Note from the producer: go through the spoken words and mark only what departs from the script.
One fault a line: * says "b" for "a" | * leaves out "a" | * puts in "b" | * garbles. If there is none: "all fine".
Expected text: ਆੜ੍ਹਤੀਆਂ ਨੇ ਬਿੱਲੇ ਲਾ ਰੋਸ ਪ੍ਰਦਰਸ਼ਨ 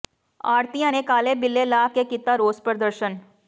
* puts in "ਕਾਲੇ"
* puts in "ਕੇ ਕੀਤਾ"